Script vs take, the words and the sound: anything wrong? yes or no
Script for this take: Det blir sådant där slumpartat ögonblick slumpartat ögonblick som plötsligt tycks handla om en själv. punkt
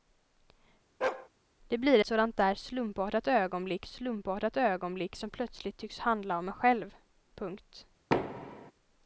yes